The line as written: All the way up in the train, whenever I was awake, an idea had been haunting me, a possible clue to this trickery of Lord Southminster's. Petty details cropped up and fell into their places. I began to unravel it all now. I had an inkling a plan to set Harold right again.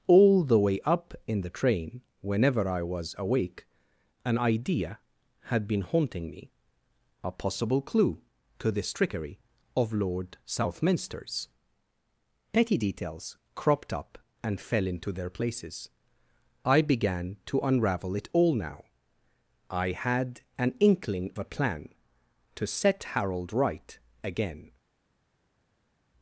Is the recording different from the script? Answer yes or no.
no